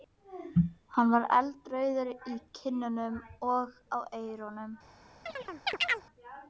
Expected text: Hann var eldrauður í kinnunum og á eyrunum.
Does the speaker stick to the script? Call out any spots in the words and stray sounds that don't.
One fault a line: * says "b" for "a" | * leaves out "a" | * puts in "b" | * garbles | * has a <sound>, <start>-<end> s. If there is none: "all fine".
* has a chirp, 5.3-6.0 s